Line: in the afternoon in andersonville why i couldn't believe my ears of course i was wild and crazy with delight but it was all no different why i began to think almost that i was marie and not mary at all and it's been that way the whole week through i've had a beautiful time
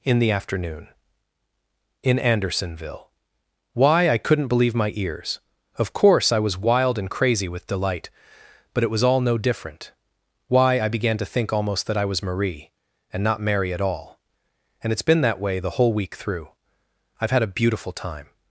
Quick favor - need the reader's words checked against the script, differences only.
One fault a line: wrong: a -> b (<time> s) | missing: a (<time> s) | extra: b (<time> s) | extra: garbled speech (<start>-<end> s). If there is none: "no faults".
no faults